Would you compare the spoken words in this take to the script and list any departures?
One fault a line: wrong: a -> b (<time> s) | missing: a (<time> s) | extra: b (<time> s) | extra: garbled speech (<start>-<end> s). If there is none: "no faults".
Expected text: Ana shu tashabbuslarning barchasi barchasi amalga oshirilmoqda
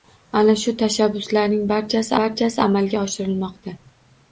no faults